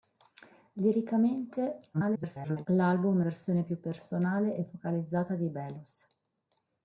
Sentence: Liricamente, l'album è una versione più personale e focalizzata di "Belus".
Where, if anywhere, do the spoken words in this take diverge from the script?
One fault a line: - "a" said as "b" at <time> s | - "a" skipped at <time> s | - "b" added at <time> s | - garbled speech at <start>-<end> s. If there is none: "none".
- garbled speech at 1.9-2.7 s
- "una" skipped at 3.3 s